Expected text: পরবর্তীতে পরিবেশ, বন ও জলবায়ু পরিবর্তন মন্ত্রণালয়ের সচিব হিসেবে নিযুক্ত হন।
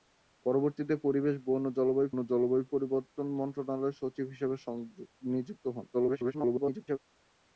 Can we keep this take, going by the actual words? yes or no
no